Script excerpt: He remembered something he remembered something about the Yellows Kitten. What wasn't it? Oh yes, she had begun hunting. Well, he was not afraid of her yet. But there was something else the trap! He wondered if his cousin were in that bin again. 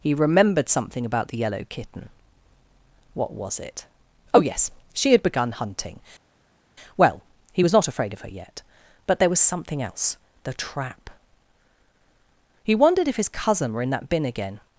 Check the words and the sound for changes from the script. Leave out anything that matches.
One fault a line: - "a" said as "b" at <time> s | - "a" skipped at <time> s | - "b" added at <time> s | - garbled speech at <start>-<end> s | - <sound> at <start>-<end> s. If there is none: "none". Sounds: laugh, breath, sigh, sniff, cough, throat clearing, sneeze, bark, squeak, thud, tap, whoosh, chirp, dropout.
- "he remembered something" skipped at 1.1 s
- "Yellows" said as "Yellow" at 1.4 s
- "wasn't" said as "was" at 3.3 s